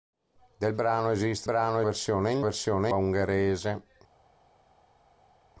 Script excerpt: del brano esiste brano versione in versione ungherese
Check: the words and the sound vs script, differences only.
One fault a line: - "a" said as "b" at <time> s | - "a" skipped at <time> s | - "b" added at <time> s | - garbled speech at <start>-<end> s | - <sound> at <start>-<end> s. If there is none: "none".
none